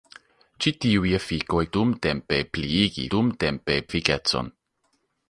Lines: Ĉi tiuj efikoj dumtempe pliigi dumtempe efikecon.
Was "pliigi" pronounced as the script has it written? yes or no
yes